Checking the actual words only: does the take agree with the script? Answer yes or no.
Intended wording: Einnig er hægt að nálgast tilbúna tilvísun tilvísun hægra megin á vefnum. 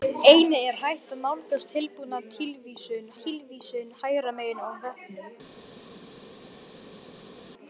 yes